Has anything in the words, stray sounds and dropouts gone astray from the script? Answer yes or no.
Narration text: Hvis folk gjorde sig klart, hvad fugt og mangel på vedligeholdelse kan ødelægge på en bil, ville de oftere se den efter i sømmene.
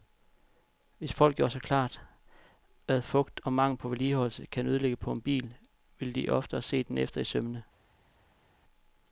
no